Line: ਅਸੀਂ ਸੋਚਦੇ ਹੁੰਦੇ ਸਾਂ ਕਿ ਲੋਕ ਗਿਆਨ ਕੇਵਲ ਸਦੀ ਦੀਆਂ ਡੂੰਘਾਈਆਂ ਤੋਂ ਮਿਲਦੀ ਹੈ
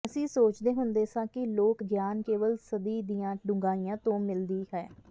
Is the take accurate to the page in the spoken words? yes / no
yes